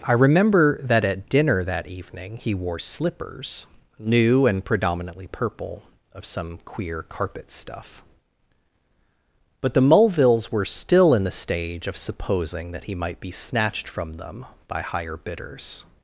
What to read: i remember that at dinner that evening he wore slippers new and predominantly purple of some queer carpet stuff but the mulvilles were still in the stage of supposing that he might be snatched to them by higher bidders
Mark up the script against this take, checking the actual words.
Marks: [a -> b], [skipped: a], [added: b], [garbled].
i remember that at dinner that evening he wore slippers new and predominantly purple of some queer carpet stuff but the mulvilles were still in the stage of supposing that he might be snatched [to -> from] them by higher bidders